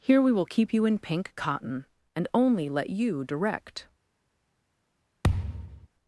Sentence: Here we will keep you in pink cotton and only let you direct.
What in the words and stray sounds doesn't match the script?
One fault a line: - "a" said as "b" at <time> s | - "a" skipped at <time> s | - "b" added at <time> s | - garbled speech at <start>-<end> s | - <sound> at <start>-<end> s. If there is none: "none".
- thud at 5.2-5.9 s